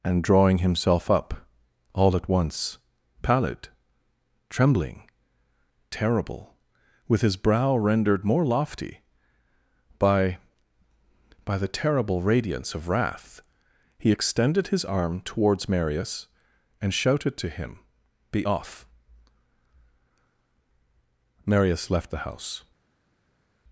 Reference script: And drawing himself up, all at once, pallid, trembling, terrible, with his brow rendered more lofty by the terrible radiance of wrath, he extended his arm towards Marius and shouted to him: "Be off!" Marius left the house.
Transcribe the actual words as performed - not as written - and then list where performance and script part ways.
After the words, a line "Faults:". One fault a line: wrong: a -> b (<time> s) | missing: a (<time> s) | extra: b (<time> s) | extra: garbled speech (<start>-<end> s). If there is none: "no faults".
And drawing himself up, all at once, pallid, trembling, terrible, with his brow rendered more lofty by by the terrible radiance of wrath, he extended his arm towards Marius and shouted to him: "Be off!" Marius left the house.
Faults:
extra: by (11.4 s)